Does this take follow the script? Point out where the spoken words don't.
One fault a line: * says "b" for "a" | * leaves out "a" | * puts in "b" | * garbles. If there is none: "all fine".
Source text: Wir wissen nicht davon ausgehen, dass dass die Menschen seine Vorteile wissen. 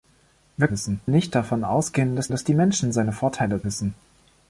all fine